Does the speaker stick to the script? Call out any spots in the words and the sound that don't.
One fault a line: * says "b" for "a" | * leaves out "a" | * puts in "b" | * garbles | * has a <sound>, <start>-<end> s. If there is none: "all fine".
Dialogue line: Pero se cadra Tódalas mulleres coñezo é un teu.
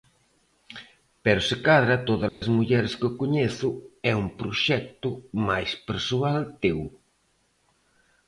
* has a dropout, 2.3-2.4 s
* puts in "que"
* puts in "proxecto máis persoal"